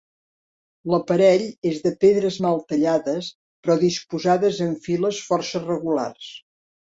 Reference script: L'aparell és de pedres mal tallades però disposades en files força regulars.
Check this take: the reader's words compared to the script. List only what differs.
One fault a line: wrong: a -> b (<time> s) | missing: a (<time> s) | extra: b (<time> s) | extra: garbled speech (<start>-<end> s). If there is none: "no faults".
no faults